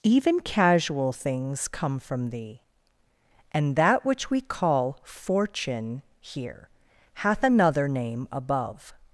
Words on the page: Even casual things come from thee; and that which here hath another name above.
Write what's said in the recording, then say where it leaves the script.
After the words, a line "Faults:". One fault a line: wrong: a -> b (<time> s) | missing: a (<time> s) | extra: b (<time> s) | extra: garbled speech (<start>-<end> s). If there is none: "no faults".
Even casual things come from thee; and that which we call fortune here hath another name above.
Faults:
extra: we call fortune (4.3 s)